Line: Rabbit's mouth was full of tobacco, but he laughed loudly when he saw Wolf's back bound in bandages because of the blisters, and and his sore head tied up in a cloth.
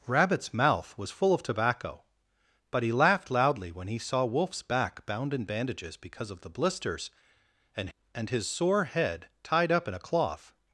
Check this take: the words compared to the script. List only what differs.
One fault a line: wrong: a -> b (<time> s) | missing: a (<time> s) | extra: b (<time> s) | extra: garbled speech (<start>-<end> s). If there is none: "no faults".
no faults